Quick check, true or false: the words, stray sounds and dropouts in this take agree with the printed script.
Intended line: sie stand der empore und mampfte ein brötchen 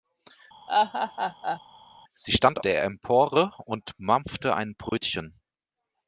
false